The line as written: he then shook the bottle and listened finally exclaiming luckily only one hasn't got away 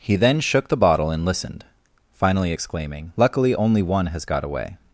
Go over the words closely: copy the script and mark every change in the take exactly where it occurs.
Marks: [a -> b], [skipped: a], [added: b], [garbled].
he then shook the bottle and listened finally exclaiming luckily only one [hasn't -> has] got away